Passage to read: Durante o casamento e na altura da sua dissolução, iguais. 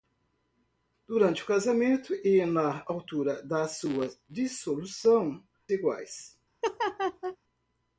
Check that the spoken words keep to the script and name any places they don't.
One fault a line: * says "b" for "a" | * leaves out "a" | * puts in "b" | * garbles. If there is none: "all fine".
all fine